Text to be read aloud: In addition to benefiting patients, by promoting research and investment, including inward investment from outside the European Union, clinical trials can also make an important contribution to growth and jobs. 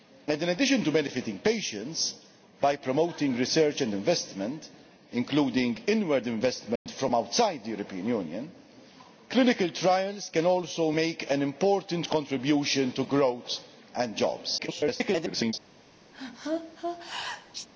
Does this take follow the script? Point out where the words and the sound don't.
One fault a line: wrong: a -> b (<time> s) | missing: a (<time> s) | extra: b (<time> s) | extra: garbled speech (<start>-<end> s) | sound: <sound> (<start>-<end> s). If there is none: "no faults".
sound: dropout (6.8-6.9 s)
extra: garbled speech (14.6-15.5 s)
sound: sneeze (16.1-17.7 s)